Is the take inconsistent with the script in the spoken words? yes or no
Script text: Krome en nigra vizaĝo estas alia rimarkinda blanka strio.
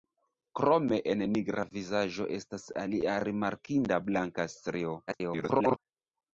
yes